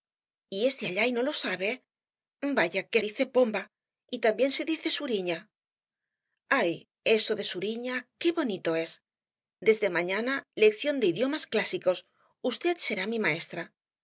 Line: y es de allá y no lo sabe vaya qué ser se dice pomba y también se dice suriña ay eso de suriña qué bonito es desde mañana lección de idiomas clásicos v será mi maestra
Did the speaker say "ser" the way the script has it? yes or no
no